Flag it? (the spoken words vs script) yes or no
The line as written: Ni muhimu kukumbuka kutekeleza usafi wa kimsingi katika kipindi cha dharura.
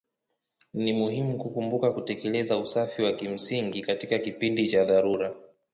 no